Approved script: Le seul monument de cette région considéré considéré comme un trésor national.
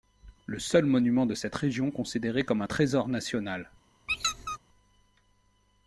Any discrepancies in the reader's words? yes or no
yes